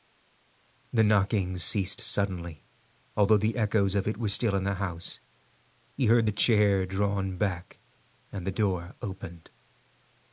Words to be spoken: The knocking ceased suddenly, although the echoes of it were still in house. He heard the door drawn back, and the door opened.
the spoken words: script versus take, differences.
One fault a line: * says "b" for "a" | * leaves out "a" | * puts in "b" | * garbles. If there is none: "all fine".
* puts in "the"
* says "chair" for "door"